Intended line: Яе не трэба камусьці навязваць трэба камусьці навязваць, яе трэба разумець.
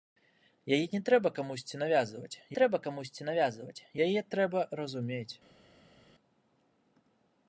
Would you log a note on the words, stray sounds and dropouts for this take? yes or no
no